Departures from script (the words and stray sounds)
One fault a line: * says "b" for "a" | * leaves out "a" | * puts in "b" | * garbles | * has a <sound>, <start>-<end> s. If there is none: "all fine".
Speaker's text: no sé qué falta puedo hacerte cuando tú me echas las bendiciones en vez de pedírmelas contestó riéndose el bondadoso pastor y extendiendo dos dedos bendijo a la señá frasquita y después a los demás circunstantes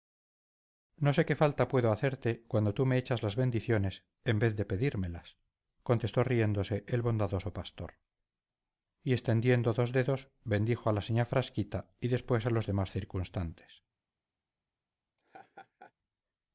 * has a laugh, 15.2-15.9 s